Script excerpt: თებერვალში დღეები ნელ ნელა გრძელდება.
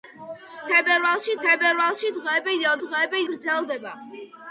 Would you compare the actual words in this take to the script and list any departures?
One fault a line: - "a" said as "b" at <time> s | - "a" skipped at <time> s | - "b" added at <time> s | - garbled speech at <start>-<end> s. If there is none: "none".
- "თებერვალში" added at 1.5 s
- "ნელა" said as "დღეები" at 2.8 s